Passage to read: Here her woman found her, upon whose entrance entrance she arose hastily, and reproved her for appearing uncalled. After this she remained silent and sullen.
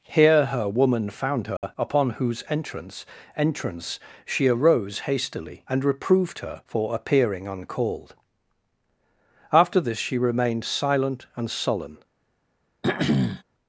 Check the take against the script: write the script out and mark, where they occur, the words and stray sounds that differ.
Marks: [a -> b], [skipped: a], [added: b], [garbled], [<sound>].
Here her woman found her, [dropout] upon whose entrance entrance she arose hastily, and reproved her for appearing uncalled. After this she remained silent and sullen. [throat clearing]